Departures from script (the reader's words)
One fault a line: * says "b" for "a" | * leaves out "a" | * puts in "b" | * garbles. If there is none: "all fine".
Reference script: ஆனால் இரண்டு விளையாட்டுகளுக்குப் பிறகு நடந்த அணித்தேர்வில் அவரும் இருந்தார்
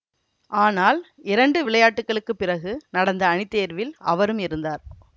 all fine